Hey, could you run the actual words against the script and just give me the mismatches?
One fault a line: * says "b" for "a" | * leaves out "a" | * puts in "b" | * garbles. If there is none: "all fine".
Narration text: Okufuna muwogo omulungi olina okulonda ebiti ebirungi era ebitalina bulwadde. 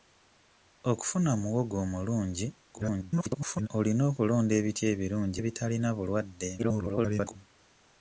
* garbles
* leaves out "era"
* garbles